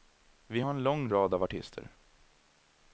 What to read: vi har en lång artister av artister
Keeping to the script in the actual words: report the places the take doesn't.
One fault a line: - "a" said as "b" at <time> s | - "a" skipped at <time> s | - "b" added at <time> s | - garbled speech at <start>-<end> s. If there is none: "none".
- "artister" said as "rad" at 1.1 s